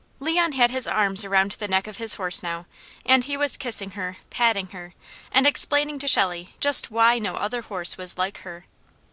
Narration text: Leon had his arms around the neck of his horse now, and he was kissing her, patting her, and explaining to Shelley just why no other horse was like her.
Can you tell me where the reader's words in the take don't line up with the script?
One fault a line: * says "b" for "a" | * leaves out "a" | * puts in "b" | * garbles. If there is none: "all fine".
all fine